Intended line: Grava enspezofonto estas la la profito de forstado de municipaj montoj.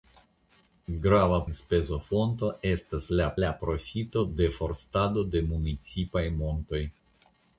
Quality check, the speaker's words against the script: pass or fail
pass